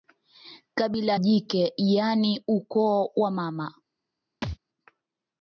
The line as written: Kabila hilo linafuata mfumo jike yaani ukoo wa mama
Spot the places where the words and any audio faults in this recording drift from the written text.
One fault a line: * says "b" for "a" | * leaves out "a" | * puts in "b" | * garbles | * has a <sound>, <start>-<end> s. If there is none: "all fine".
* leaves out "hilo linafuata mfumo"
* has a thud, 4.4-4.6 s